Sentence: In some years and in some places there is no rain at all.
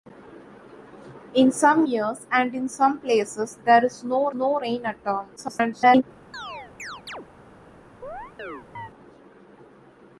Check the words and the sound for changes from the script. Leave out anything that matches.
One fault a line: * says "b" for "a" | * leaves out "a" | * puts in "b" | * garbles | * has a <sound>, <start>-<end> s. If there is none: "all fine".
* puts in "no"
* garbles
* has a chirp, 6.3-7.3 s
* has a chirp, 8.0-8.9 s